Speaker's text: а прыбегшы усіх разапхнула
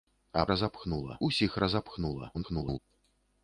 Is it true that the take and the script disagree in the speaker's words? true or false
true